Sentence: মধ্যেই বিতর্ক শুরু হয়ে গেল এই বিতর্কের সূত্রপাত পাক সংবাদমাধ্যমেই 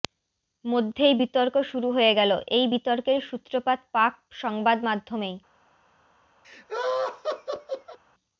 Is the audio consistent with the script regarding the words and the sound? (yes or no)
no